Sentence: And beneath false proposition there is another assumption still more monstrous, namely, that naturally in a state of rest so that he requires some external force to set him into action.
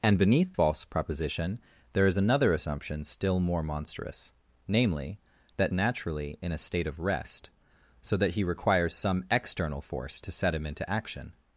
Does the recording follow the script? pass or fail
pass